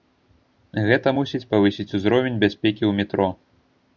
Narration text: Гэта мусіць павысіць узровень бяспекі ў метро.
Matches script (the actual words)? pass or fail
pass